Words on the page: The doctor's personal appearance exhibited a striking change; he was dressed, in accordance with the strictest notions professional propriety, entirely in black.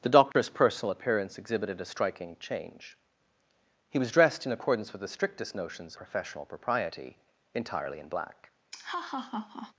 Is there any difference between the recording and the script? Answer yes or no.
no